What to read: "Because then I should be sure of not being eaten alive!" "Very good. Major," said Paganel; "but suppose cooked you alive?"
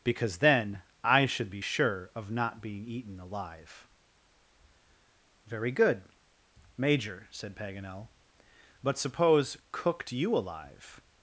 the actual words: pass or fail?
pass